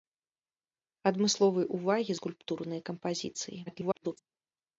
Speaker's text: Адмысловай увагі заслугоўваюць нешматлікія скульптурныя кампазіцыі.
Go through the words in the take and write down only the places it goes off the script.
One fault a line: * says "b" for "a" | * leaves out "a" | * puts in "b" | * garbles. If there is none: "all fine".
* leaves out "заслугоўваюць нешматлікія"
* garbles